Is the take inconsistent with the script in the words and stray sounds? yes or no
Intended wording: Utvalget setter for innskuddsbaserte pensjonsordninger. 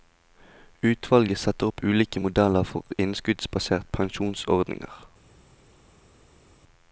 yes